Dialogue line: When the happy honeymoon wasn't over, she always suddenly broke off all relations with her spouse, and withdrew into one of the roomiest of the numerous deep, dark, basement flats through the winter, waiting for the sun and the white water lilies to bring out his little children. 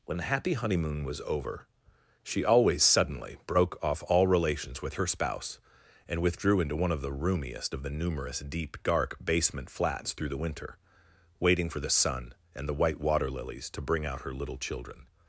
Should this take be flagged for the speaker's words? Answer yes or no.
yes